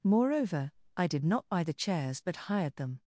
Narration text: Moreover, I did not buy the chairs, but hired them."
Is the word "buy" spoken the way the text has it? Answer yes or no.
yes